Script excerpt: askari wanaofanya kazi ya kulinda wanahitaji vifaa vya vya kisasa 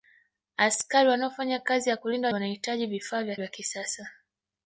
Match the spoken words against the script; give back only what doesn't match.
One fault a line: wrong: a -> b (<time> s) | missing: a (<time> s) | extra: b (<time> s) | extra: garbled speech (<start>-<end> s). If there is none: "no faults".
no faults